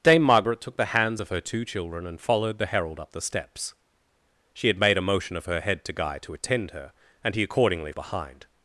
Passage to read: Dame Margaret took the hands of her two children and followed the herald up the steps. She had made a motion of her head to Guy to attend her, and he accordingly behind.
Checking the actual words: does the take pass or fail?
pass